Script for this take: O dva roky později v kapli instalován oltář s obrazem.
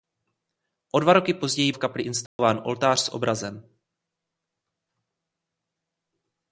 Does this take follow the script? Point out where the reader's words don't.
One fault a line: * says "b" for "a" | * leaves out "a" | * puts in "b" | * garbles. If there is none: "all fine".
all fine